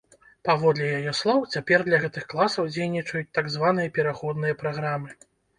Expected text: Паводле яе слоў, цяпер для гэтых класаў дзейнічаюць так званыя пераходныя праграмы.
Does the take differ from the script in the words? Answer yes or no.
no